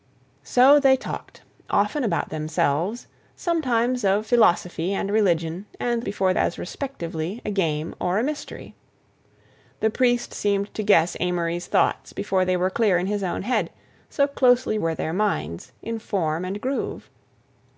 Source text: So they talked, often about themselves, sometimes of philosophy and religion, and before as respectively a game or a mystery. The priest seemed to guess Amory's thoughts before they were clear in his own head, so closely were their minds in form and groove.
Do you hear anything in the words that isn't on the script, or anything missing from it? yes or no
no